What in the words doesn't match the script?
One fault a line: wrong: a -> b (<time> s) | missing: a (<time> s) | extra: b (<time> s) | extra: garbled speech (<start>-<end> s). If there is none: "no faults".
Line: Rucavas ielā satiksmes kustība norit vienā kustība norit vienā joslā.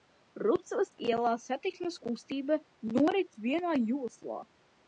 missing: kustība norit vienā (3.8 s)